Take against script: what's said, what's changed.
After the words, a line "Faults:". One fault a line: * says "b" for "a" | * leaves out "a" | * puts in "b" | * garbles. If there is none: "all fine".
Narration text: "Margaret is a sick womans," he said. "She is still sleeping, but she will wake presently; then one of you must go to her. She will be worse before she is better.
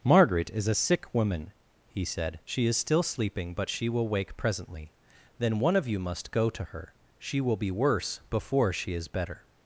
"Margaret is a sick woman," he said. "She is still sleeping, but she will wake presently; then one of you must go to her. She will be worse before she is better.
Faults:
* says "woman" for "womans"